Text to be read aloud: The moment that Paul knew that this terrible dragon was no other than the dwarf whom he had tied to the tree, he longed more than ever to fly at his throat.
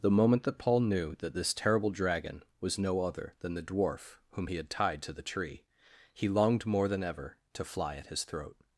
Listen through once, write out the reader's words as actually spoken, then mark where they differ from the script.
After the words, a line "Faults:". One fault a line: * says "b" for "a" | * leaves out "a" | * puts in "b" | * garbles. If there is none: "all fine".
The moment that Paul knew that this terrible dragon was no other than the dwarf whom he had tied to the tree, he longed more than ever to fly at his throat.
Faults:
all fine